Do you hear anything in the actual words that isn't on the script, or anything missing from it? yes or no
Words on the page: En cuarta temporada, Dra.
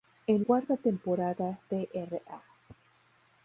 no